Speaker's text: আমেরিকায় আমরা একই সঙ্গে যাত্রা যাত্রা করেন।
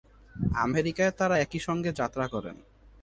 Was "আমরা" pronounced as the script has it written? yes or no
no